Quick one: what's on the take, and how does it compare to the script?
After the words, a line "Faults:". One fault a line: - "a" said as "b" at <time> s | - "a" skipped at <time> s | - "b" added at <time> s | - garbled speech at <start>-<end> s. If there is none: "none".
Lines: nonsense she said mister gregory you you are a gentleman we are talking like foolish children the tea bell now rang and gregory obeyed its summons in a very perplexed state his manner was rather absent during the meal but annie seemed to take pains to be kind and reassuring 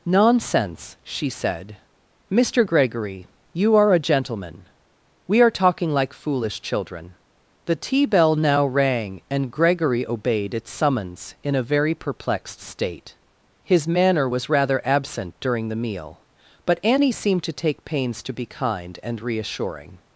nonsense she said mister gregory you are a gentleman we are talking like foolish children the tea bell now rang and gregory obeyed its summons in a very perplexed state his manner was rather absent during the meal but annie seemed to take pains to be kind and reassuring
Faults:
- "you" skipped at 3.7 s